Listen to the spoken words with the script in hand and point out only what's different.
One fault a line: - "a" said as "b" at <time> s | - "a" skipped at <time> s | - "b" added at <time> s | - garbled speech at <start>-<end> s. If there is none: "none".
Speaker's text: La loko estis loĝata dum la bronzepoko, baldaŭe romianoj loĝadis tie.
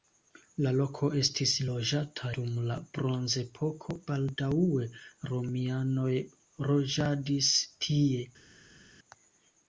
none